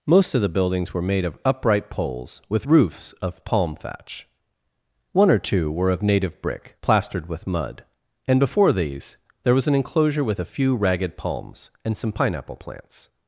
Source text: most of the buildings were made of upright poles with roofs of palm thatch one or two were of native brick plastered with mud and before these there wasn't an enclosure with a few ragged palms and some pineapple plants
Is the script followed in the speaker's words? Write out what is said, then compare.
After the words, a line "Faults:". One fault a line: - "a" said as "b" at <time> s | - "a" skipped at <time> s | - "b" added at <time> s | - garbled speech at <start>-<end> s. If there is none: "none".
most of the buildings were made of upright poles with roofs of palm thatch one or two were of native brick plastered with mud and before these there was an enclosure with a few ragged palms and some pineapple plants
Faults:
- "wasn't" said as "was" at 9.5 s